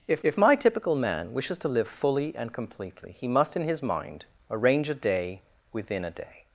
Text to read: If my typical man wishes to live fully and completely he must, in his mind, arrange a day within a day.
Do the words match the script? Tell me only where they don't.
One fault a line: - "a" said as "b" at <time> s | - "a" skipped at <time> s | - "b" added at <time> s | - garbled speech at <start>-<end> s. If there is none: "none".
- "if" added at 0.2 s